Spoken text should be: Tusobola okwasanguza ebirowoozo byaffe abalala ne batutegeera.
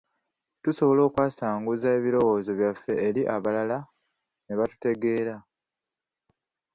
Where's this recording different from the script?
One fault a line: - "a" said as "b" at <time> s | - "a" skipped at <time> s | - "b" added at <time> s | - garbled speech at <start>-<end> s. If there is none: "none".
- "eri" added at 3.1 s